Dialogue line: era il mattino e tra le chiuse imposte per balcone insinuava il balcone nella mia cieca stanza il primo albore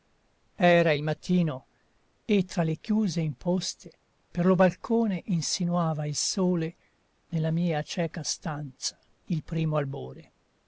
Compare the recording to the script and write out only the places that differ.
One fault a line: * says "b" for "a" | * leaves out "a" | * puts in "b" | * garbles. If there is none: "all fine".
* puts in "lo"
* says "sole" for "balcone"